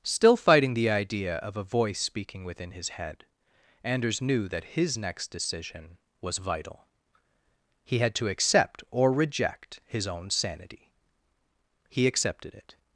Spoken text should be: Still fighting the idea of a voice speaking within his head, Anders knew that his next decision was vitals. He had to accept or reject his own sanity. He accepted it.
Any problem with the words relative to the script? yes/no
yes